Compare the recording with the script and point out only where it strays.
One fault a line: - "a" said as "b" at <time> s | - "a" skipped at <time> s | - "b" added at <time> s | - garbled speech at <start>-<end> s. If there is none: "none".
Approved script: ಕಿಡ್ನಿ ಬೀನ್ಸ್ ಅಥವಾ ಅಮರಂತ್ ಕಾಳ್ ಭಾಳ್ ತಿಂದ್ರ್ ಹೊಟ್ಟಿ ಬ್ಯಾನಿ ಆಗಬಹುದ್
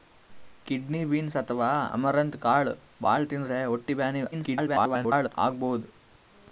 - garbled speech at 4.3-5.3 s